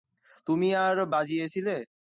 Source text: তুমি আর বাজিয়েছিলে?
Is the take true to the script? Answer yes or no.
yes